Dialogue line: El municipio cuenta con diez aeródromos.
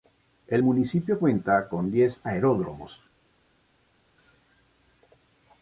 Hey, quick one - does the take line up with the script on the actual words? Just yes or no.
yes